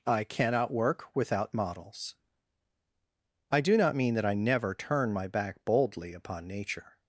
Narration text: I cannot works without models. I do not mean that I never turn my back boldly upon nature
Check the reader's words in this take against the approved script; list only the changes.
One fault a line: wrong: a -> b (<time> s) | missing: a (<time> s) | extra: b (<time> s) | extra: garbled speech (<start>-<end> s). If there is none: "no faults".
wrong: works -> work (0.7 s)